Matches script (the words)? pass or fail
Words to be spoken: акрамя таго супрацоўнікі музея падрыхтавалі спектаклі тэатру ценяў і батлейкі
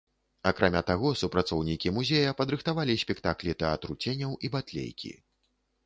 pass